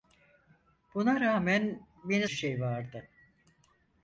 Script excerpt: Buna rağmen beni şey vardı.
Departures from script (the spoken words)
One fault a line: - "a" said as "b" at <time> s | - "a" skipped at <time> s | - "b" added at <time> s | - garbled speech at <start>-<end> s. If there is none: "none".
none